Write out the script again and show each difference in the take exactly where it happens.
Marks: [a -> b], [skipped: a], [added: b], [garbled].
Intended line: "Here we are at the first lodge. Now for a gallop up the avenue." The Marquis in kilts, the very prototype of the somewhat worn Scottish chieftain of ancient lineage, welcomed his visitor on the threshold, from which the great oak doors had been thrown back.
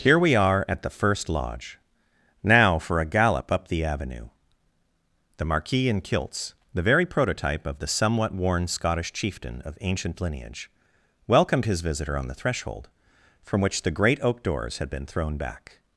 "Here we are at the first lodge. Now for a gallop up the avenue." The Marquis in kilts, the very prototype of the somewhat worn Scottish chieftain of ancient lineage, welcomed his visitor on the threshold, from which the great oak doors had been thrown back.